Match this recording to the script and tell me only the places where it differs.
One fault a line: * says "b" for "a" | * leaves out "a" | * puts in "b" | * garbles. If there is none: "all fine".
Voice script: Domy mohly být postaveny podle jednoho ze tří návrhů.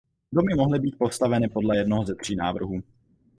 all fine